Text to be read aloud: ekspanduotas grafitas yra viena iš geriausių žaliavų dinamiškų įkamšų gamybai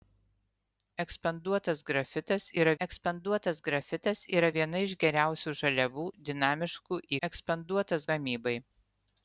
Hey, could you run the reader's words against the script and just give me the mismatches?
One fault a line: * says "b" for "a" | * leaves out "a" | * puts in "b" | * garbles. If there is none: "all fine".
* puts in "ekspanduotas grafitas yra"
* says "ekspanduotas" for "įkamšų"